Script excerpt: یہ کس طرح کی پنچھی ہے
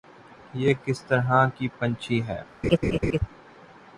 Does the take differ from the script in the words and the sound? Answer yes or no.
yes